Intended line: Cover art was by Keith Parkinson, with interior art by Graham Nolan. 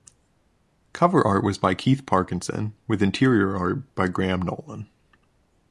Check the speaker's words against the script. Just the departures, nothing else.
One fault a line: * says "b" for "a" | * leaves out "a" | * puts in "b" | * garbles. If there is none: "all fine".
all fine